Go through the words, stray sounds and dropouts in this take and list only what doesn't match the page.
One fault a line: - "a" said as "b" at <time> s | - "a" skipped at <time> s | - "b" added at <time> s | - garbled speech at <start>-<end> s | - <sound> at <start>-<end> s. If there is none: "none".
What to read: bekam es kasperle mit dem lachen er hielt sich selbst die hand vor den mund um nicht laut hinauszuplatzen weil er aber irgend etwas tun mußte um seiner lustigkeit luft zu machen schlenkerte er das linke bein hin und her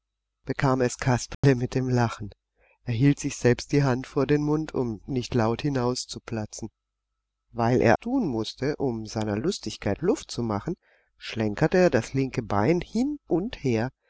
- dropout at 1.3-1.4 s
- "aber irgend etwas" skipped at 8.0 s